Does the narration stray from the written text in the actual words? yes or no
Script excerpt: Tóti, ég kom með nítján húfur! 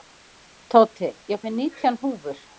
yes